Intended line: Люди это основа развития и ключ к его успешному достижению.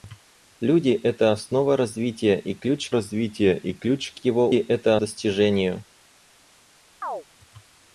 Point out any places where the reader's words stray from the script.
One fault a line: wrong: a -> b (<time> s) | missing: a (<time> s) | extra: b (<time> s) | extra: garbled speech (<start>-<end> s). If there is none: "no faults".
extra: развития и ключ (2.9 s)
wrong: успешному -> это (4.5 s)